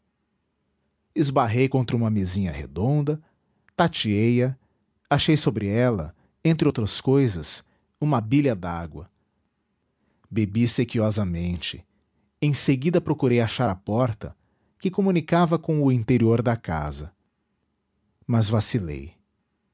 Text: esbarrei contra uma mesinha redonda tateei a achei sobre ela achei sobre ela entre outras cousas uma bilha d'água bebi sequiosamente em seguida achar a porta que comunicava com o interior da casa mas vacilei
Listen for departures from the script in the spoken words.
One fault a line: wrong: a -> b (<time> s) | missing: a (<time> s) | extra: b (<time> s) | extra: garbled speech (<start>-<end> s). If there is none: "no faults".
missing: achei sobre ela (6.1 s)
extra: procurei (13.0 s)